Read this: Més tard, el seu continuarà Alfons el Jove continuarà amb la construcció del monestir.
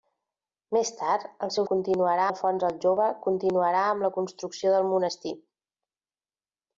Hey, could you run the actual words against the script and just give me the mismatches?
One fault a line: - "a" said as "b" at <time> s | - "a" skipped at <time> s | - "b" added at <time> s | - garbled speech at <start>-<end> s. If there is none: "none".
none